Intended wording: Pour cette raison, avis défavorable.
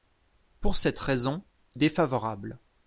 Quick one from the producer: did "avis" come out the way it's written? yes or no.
no